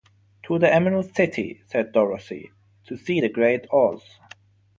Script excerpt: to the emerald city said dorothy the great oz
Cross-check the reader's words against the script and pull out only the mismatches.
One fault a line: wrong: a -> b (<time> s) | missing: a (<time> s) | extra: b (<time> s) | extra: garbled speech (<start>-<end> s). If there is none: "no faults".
extra: to see (2.9 s)